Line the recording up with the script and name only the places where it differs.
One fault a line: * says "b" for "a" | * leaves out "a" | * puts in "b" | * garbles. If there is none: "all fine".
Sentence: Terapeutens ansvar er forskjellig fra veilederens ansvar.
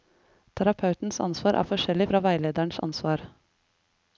all fine